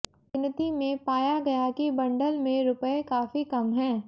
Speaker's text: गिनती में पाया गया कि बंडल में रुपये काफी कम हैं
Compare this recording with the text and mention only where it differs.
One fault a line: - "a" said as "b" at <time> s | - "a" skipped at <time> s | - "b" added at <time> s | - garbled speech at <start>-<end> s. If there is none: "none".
none